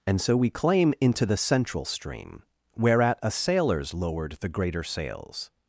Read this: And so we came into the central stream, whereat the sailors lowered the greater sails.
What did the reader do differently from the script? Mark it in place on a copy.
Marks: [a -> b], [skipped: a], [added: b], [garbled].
And so we [came -> claim] into the central stream, whereat [the -> a] sailors lowered the greater sails.